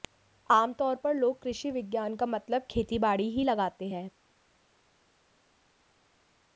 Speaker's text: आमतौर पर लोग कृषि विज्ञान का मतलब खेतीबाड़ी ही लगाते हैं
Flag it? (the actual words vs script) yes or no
no